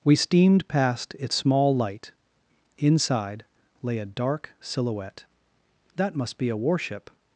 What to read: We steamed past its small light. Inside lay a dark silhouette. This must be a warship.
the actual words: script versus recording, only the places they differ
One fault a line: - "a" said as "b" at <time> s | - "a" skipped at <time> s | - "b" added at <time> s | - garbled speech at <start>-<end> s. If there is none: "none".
- "This" said as "That" at 6.0 s